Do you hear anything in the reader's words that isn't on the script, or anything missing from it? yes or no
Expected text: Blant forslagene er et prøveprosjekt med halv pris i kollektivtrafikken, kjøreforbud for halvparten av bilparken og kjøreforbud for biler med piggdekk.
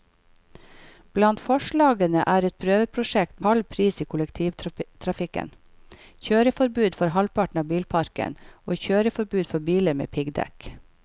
yes